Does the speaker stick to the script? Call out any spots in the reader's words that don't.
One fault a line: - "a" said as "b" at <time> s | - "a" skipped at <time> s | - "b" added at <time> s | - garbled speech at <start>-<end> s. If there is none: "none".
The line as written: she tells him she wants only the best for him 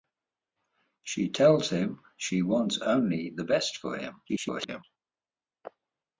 - garbled speech at 4.3-4.8 s